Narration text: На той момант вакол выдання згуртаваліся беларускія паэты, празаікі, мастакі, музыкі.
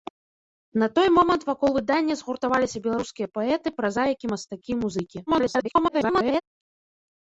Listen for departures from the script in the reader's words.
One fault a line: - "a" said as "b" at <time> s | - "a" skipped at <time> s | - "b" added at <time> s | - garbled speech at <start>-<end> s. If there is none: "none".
- garbled speech at 5.3-6.4 s